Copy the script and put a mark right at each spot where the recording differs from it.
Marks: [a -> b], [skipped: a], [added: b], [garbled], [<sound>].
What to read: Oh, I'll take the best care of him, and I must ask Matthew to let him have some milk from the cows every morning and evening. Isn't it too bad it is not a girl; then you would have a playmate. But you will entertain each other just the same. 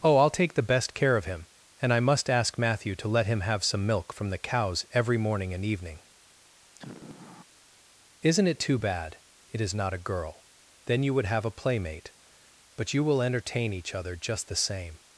Oh, I'll take the best care of him, and I must ask Matthew to let him have some milk from the cows every morning and evening. [sigh] Isn't it too bad it is not a girl; then you would have a playmate. But you will entertain each other just the same.